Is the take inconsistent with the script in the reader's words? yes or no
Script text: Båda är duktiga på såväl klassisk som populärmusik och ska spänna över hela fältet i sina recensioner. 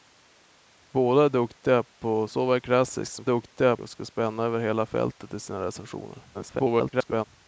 yes